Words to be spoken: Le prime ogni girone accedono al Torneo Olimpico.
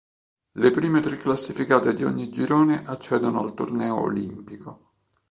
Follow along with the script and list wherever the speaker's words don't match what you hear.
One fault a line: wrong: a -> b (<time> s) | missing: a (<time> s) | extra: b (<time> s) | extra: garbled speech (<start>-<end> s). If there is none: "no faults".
extra: tre classificate di (1.0 s)